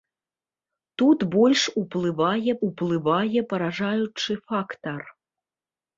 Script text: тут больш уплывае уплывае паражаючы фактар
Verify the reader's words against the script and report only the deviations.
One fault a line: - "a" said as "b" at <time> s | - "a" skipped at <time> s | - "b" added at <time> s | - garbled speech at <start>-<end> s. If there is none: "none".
none